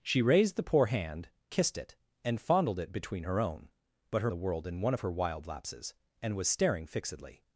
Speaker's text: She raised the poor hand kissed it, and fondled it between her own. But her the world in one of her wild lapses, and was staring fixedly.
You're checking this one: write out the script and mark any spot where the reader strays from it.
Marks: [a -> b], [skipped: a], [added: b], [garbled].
She raised the poor hand kissed it, and fondled it between her own. But her the world in one of her wild lapses, and was staring fixedly.